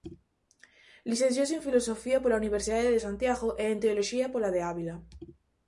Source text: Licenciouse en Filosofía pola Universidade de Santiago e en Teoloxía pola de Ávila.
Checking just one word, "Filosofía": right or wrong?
right